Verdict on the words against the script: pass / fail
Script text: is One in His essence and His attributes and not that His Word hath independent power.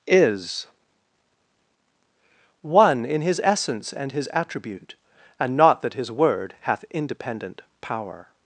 fail